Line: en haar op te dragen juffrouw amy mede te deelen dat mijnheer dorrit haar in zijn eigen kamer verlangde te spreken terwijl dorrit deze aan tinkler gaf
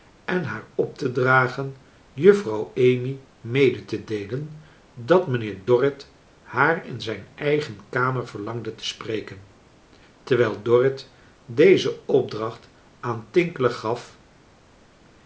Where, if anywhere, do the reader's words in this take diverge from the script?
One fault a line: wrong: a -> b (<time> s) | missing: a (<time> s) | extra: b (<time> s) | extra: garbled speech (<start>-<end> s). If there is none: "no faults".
extra: opdracht (12.1 s)